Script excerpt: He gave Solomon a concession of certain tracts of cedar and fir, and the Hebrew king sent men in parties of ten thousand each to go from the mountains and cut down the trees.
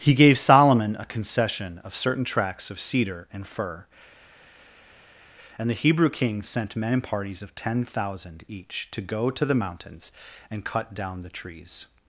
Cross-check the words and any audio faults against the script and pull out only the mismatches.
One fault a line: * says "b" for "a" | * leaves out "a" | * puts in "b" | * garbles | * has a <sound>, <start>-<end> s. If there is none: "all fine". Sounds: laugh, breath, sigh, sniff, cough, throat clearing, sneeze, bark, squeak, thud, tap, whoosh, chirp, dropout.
* says "to" for "from"